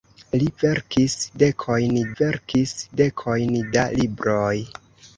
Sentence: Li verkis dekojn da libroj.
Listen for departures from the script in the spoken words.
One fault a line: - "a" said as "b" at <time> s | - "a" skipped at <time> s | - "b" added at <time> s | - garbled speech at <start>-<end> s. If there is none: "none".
- "verkis dekojn" added at 2.2 s